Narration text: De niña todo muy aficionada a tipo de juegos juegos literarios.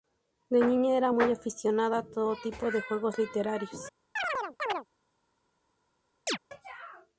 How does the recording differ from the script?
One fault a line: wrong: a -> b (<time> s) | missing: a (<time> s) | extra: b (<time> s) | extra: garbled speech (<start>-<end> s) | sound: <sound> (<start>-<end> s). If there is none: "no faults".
wrong: todo -> era (1.0 s)
extra: todo (2.0 s)
missing: juegos (3.2 s)
sound: chirp (4.2-4.9 s)
sound: chirp (6.3-6.4 s)